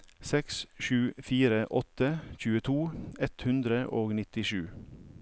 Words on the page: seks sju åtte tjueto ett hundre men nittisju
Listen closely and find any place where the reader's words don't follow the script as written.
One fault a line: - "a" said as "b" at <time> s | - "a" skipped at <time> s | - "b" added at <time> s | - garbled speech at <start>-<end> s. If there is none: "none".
- "fire" added at 1.2 s
- "men" said as "og" at 4.0 s